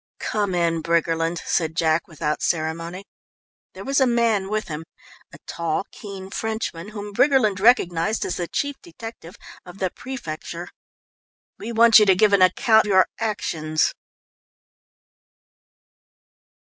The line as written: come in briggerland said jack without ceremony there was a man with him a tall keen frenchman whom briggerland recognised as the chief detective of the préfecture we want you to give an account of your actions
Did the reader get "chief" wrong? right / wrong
right